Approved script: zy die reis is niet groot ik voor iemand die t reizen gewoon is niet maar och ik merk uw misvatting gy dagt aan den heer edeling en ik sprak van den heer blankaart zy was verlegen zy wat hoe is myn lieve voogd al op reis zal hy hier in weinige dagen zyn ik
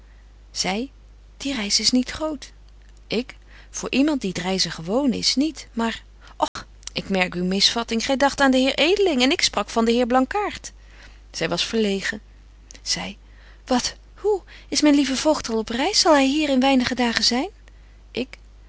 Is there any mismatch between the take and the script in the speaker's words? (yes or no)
no